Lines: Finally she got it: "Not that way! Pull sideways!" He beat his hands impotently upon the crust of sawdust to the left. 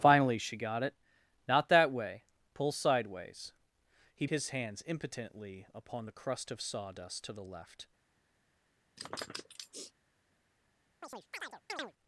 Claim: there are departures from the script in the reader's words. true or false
true